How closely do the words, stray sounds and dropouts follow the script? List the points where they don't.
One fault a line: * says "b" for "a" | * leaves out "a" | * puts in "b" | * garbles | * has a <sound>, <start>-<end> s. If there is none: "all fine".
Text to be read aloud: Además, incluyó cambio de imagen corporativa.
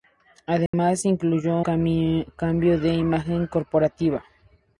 * has a dropout, 0.7-0.7 s